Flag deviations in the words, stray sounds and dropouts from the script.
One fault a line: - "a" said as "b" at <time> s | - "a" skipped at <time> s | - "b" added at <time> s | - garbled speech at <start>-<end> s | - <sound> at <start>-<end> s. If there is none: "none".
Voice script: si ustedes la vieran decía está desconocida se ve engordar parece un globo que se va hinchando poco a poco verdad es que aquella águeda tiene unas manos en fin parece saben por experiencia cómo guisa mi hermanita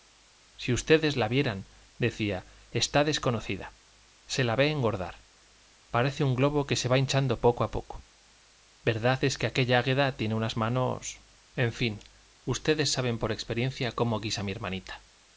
- "la" added at 4.4 s
- "parece" said as "ustedes" at 12.4 s